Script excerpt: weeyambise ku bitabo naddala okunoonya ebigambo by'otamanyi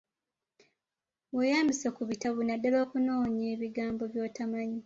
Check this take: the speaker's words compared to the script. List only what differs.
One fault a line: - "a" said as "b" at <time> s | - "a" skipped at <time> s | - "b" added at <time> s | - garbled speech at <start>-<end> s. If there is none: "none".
none